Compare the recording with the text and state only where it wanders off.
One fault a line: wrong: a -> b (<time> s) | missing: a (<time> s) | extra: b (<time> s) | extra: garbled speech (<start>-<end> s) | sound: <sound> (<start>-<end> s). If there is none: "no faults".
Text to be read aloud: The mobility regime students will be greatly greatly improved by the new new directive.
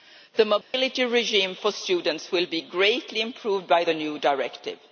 sound: dropout (0.6-0.7 s)
extra: for (1.5 s)
missing: greatly (3.2 s)
missing: new (4.2 s)